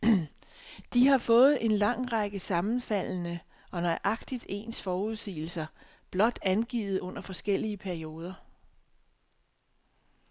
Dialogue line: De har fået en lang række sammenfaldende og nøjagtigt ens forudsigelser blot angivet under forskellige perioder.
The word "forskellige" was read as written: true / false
true